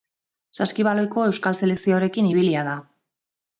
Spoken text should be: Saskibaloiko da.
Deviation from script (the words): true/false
true